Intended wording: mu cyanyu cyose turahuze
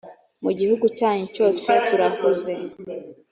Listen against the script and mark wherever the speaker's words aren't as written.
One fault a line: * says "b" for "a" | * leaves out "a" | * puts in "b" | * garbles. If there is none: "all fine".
* puts in "gihugu"